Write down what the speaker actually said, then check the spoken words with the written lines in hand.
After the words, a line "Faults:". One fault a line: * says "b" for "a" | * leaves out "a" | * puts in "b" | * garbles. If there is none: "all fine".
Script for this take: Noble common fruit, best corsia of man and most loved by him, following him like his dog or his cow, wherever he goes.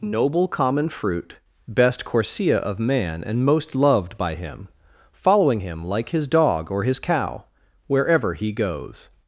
Noble common fruit, best corsia of man and most loved by him, following him like his dog or his cow, wherever he goes.
Faults:
all fine